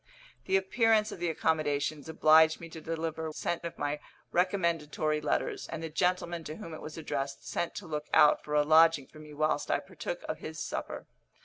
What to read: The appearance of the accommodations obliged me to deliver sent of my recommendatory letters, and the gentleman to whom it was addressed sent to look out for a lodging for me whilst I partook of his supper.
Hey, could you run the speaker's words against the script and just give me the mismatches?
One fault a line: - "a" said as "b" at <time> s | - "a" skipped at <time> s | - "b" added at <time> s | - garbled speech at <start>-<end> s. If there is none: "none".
none